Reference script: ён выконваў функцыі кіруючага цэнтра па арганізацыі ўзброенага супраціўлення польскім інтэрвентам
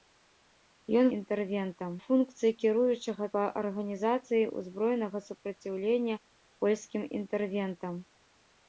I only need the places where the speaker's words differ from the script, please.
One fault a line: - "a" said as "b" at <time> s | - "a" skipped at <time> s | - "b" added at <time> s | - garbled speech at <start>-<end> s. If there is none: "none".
- "выконваў" said as "інтэрвентам" at 1.2 s
- "цэнтра" skipped at 3.3 s